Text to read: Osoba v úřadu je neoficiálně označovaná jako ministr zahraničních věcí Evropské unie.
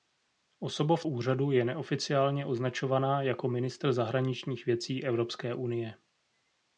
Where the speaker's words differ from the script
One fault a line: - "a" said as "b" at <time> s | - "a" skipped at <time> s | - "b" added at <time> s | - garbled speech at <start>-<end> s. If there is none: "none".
none